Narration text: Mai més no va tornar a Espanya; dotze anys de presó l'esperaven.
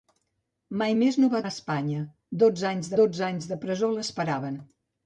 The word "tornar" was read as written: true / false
false